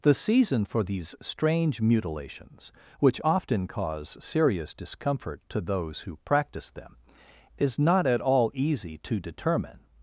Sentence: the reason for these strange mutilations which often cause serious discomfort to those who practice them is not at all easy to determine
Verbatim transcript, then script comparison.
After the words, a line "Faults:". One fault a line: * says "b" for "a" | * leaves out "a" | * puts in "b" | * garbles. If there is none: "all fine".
the season for these strange mutilations which often cause serious discomfort to those who practice them is not at all easy to determine
Faults:
* says "season" for "reason"